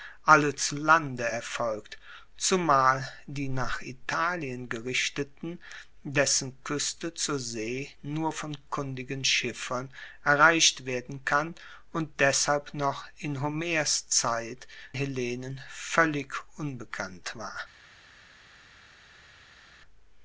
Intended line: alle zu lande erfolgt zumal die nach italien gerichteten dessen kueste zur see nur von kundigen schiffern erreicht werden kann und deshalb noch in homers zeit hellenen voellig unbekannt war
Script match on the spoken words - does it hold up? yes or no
yes